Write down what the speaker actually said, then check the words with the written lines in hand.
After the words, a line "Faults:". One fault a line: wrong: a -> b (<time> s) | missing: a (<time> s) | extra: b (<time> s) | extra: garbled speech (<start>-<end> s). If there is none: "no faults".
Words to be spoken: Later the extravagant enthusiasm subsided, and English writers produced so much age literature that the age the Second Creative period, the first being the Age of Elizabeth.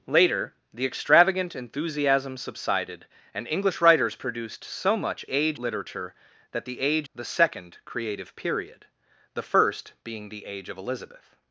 Later the extravagant enthusiasm subsided, and English writers produced so much age literature that the age the Second Creative period, the first being the Age of Elizabeth.
Faults:
no faults